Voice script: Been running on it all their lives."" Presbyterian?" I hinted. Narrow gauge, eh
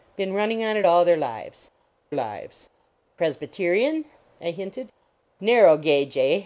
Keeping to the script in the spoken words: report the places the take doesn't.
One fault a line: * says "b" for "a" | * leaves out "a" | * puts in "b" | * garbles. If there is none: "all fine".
* puts in "lives"